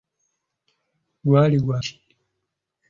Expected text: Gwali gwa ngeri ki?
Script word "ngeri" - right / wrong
wrong